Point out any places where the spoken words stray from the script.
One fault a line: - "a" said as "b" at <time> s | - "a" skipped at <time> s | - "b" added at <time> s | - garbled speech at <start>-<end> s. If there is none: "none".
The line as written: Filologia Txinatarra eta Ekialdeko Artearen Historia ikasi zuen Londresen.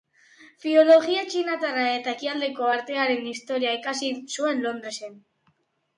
none